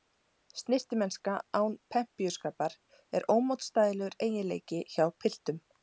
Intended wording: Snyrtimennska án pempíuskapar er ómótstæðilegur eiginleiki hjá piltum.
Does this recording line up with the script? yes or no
yes